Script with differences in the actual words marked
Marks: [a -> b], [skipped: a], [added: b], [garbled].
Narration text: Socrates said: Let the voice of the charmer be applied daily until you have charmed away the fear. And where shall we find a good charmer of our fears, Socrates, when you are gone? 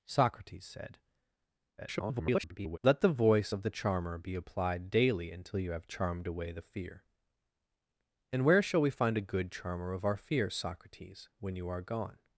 Socrates said: [garbled] Let the voice of the charmer be applied daily until you have charmed away the fear. And where shall we find a good charmer of our fears, Socrates, when you are gone?